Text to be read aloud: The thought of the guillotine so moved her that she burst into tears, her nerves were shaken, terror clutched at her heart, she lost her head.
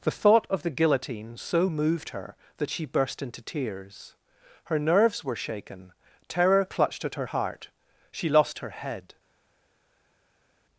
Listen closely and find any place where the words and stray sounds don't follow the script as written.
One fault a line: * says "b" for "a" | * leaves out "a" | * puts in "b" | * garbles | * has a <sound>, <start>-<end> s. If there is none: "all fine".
all fine